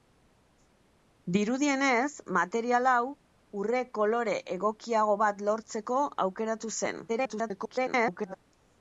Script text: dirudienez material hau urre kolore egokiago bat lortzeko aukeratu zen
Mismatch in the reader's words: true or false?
true